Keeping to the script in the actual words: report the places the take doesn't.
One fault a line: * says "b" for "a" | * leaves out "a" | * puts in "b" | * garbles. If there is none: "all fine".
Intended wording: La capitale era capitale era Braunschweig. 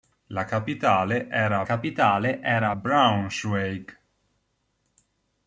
all fine